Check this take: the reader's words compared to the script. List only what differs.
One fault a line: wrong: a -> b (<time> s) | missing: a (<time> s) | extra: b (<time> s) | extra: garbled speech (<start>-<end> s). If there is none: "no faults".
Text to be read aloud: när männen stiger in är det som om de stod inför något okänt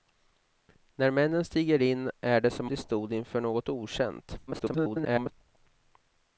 missing: om (2.7 s)
extra: garbled speech (4.5-5.3 s)